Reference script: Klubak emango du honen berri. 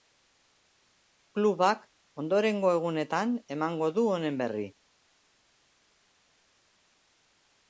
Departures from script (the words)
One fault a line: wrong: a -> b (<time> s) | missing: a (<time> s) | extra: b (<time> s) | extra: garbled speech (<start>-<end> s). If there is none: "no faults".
extra: ondorengo egunetan (2.2 s)